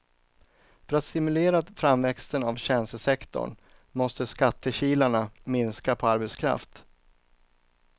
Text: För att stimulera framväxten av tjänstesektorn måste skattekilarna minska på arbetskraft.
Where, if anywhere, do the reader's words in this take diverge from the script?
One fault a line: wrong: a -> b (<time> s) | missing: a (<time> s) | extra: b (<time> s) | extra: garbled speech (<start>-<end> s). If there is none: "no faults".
no faults